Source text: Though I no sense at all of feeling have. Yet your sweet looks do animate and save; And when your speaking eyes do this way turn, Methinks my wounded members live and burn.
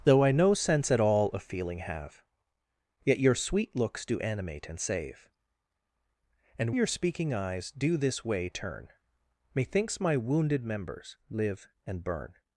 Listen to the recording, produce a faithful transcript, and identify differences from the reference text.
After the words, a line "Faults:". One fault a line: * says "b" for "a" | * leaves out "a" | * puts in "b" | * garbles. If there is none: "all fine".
Though I no sense at all of feeling have. Yet your sweet looks do animate and save; And your speaking eyes do this way turn, Methinks my wounded members live and burn.
Faults:
* leaves out "when"